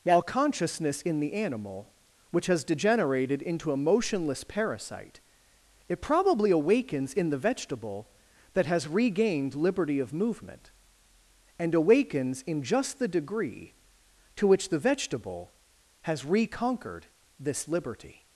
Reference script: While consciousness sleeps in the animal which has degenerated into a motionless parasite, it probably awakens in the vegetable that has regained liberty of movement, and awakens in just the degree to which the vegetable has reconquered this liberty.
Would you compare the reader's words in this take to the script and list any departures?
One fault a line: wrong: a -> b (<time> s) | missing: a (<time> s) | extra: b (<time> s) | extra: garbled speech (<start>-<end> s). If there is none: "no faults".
missing: sleeps (1.0 s)